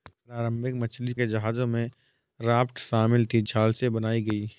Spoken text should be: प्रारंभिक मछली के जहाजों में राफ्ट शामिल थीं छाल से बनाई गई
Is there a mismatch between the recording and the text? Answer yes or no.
no